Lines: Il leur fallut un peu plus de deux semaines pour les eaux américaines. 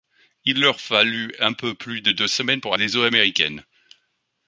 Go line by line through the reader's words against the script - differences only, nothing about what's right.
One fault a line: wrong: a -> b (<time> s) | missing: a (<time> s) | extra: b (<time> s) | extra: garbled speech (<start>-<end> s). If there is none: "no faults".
no faults